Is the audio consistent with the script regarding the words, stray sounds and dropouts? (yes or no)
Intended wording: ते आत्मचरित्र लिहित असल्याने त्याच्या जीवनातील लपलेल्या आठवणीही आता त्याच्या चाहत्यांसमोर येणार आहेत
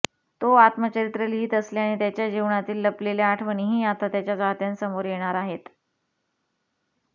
no